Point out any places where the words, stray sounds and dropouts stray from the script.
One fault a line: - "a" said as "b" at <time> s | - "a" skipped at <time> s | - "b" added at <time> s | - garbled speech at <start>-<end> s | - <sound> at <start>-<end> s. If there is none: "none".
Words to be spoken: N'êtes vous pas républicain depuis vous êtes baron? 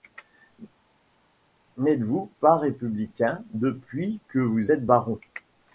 - "que" added at 4.3 s